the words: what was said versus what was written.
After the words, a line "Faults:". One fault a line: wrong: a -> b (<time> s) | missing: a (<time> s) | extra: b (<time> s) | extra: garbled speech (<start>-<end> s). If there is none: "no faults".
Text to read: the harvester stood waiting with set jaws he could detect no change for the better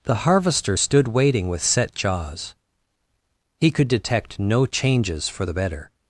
the harvester stood waiting with set jaws he could detect no changes for the better
Faults:
wrong: change -> changes (4.6 s)